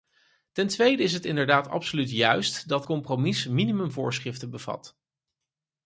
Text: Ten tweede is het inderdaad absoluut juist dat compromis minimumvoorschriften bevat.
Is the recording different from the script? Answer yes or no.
no